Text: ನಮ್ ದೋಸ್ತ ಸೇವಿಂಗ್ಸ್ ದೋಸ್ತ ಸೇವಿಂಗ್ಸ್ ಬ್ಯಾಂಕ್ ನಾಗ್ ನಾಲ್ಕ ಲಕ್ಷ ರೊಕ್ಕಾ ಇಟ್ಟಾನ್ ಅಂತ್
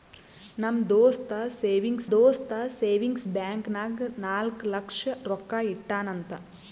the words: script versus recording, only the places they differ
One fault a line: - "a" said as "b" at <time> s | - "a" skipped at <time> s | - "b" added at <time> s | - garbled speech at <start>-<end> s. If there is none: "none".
none